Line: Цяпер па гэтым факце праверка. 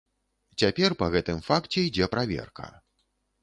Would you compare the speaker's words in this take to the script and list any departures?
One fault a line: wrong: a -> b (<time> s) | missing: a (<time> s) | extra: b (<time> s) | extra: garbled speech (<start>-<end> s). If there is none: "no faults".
extra: ідзе (1.9 s)